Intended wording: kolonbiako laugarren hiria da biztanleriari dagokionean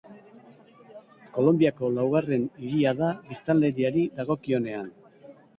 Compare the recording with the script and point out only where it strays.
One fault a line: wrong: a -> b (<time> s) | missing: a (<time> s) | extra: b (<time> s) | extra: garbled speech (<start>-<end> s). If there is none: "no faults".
no faults